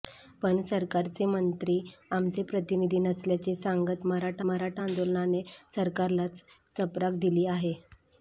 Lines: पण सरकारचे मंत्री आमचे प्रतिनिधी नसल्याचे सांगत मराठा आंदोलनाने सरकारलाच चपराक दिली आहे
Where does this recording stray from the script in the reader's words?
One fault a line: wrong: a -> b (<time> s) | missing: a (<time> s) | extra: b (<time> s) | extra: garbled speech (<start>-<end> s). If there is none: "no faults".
extra: मराठा (4.4 s)